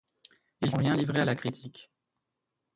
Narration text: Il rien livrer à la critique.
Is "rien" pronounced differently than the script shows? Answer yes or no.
no